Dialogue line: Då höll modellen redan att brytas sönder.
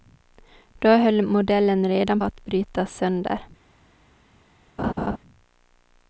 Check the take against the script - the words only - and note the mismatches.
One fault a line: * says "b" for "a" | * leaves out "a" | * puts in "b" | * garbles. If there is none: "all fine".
all fine